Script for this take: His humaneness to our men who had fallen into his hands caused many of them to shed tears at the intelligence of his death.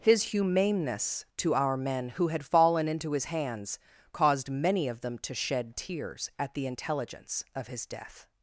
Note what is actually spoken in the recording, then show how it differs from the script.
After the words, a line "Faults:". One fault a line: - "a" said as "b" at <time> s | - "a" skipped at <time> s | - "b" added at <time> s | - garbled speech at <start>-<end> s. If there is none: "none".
His humaneness to our men who had fallen into his hands caused many of them to shed tears at the intelligence of his death.
Faults:
none